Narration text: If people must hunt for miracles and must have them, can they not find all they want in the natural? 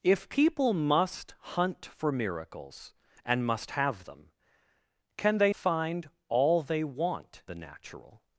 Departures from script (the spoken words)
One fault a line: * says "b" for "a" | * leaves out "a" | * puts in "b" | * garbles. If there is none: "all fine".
* leaves out "not"
* leaves out "in"